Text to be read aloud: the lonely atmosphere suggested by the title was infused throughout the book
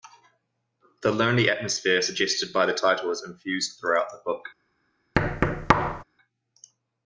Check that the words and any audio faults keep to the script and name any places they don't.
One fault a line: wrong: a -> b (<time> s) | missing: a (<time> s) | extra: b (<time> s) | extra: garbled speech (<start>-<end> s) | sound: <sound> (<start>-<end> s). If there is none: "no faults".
wrong: was -> is (3.1 s)
sound: thud (5.2-6.0 s)